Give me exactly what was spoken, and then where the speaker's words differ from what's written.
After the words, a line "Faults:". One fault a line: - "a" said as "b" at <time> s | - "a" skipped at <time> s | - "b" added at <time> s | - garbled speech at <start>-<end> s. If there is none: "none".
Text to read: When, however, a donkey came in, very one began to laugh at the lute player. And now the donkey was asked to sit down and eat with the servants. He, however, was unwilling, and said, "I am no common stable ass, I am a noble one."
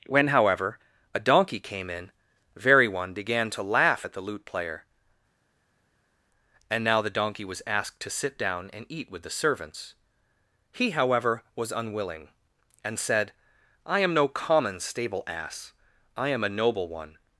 When, however, a donkey came in, very one began to laugh at the lute player. And now the donkey was asked to sit down and eat with the servants. He, however, was unwilling, and said, "I am no common stable ass, I am a noble one."
Faults:
none